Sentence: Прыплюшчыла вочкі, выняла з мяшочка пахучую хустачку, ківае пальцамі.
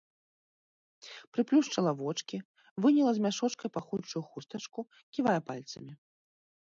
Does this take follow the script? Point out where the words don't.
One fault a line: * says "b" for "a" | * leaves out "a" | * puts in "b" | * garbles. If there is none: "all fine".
all fine